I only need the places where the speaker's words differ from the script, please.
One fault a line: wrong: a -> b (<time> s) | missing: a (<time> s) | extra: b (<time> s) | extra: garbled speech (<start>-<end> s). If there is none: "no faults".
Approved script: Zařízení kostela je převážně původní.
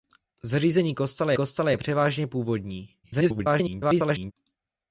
extra: kostela (1.3 s)
extra: garbled speech (3.0-4.3 s)